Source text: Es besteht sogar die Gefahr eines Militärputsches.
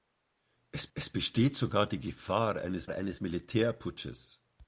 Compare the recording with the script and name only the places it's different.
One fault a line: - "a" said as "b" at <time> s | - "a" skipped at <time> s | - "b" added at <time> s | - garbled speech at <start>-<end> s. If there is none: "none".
- "es" added at 0.9 s
- "eines" added at 2.9 s